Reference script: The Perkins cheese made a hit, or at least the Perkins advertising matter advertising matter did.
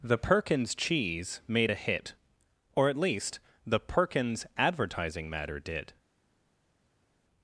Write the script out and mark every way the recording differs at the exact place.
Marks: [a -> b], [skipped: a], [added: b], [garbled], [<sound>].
The Perkins cheese made a hit, or at least the Perkins advertising matter [skipped: advertising matter] did.